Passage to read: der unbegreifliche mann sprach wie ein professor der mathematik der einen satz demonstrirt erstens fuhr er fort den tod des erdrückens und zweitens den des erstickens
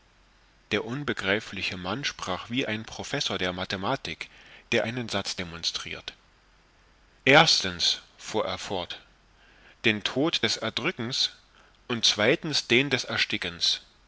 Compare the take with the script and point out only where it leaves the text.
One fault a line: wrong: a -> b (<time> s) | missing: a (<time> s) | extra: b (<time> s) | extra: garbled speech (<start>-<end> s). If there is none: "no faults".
no faults